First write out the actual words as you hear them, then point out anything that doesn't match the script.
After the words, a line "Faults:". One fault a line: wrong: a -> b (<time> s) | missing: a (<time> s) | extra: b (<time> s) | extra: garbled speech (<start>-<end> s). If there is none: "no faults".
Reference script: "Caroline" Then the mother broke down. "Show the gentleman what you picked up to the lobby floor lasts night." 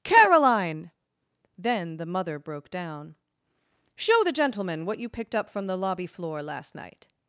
"Caroline" Then the mother broke down. "Show the gentleman what you picked up from the lobby floor last night."
Faults:
wrong: to -> from (5.5 s)
wrong: lasts -> last (6.4 s)